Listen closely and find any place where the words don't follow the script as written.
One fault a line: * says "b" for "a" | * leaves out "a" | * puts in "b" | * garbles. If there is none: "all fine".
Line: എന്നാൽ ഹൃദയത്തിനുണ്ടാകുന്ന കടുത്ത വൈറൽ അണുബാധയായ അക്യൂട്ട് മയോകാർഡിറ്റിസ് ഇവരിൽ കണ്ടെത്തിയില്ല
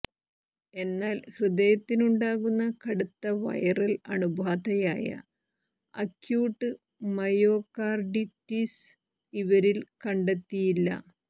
all fine